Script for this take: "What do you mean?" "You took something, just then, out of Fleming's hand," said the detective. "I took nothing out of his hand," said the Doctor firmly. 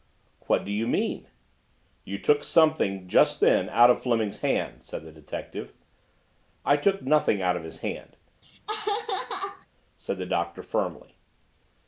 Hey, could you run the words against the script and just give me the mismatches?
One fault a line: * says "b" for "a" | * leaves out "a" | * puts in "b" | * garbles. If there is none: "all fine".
all fine